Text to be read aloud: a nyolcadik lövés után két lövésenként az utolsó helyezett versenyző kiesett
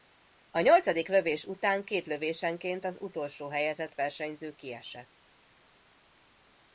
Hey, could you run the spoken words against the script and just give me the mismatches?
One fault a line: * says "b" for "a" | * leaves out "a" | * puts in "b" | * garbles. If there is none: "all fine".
all fine